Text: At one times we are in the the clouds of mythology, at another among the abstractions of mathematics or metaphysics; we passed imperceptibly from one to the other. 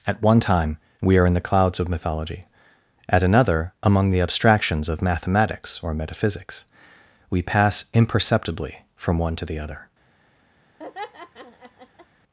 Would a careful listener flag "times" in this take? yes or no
yes